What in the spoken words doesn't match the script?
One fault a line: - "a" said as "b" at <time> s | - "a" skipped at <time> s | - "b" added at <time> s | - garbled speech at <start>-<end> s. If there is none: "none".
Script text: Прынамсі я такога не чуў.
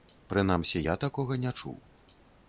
none